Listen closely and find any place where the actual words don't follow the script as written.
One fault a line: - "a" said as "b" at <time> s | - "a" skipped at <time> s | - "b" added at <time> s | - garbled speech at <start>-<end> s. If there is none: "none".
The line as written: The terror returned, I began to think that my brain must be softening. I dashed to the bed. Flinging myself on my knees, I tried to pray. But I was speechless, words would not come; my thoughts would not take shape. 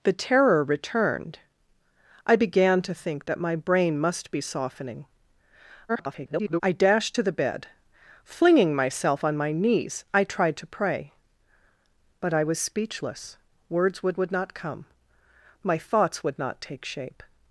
- garbled speech at 5.9-6.6 s
- "would" added at 14.2 s